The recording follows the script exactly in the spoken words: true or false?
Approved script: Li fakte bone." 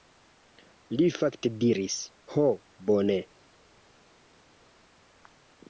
false